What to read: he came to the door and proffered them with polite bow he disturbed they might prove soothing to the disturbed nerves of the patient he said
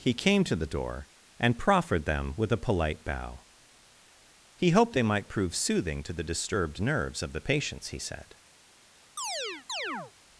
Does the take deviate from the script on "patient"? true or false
true